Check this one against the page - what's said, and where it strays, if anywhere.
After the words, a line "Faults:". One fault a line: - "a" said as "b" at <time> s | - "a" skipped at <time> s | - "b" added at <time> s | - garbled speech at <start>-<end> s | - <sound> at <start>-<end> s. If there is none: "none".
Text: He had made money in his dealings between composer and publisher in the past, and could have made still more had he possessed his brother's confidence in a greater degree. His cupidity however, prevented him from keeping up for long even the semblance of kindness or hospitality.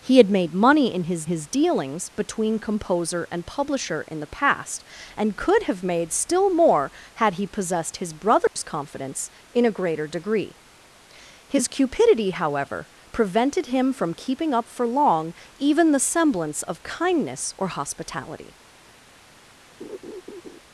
He had made money in his his dealings between composer and publisher in the past, and could have made still more had he possessed his brother's confidence in a greater degree. His cupidity however, prevented him from keeping up for long even the semblance of kindness or hospitality.
Faults:
- "his" added at 1.2 s
- dropout at 8.5-8.6 s
- laugh at 19.8-20.6 s